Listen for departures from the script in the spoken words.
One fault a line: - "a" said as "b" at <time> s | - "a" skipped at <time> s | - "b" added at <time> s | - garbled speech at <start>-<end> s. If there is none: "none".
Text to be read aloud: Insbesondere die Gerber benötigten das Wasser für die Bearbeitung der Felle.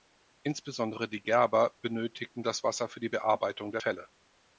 none